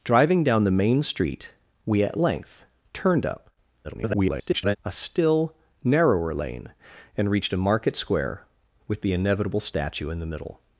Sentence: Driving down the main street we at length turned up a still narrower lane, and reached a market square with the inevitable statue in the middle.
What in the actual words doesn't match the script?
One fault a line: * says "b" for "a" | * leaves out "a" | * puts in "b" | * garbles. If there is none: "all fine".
* garbles